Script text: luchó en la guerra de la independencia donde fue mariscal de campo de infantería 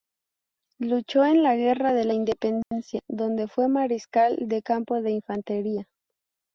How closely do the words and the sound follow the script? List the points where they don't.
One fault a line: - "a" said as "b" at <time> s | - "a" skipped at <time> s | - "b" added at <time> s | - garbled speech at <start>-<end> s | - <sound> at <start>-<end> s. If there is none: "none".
- dropout at 2.6-2.7 s